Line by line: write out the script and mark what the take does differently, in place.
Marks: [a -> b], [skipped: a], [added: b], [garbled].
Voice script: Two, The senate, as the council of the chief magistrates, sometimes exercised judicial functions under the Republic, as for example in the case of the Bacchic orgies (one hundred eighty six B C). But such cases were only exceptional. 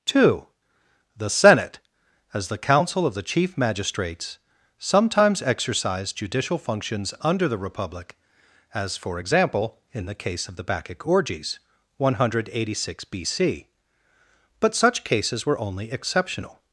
Two, The senate, as the council of the chief magistrates, sometimes exercised judicial functions under the Republic, as for example in the case of the Bacchic orgies (one hundred eighty six B C). But such cases were only exceptional.